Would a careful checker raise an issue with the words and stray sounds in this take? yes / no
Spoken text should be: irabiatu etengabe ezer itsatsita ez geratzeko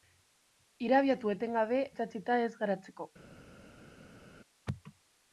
yes